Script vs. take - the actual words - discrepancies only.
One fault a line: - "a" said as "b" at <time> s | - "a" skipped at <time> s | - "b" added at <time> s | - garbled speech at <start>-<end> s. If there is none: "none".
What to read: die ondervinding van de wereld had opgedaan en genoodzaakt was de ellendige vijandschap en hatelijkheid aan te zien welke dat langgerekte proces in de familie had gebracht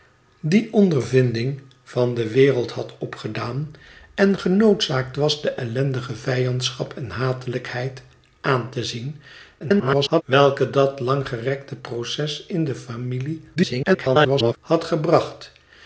- garbled speech at 9.6-10.2 s
- garbled speech at 13.6-14.6 s